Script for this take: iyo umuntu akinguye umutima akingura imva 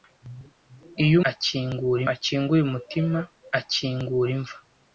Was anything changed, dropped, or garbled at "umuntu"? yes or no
yes